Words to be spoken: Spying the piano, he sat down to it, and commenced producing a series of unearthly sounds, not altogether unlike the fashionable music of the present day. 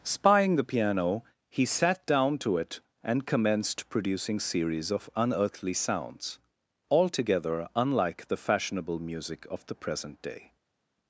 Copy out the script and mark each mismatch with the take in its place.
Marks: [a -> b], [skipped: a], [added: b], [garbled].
Spying the piano, he sat down to it, and commenced producing [skipped: a] series of unearthly sounds, [skipped: not] altogether unlike the fashionable music of the present day.